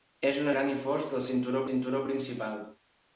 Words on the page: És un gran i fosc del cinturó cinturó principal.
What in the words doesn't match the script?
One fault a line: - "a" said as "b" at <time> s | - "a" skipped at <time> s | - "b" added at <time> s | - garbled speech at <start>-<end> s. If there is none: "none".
none